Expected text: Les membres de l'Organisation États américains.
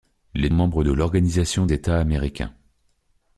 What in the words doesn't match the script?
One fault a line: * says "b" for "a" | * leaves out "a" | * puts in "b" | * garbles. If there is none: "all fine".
all fine